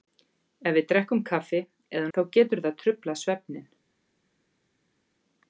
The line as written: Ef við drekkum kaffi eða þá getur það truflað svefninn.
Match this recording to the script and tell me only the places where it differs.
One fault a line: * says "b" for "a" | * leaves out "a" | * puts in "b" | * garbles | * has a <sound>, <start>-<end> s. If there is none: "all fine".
all fine